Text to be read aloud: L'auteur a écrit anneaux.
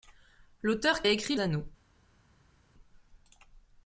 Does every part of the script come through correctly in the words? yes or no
yes